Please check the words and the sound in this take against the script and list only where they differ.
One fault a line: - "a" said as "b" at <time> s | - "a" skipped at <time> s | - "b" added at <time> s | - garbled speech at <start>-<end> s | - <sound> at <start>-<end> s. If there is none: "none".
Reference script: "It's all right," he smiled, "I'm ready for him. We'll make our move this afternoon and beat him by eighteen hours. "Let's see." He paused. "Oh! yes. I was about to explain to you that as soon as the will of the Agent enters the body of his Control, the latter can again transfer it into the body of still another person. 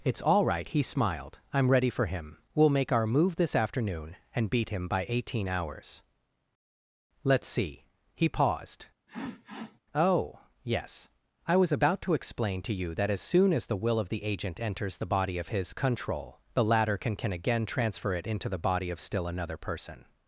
- sniff at 9.1-9.8 s
- "can" added at 17.2 s